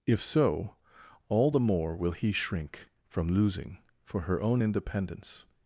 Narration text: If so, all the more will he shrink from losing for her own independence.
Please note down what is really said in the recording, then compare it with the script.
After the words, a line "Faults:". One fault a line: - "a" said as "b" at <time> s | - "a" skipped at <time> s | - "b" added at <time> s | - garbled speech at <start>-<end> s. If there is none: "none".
If so, all the more will he shrink from losing for her own independence.
Faults:
none